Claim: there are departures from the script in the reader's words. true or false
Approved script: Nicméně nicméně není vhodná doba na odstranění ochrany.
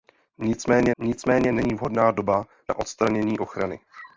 false